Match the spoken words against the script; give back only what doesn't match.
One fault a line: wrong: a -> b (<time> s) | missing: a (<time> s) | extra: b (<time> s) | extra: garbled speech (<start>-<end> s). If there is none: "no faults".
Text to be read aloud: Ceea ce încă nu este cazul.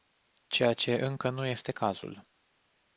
no faults